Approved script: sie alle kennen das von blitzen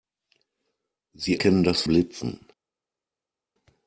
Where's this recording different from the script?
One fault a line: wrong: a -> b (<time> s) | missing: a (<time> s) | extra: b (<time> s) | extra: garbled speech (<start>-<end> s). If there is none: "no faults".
missing: alle (1.4 s)
missing: von (1.8 s)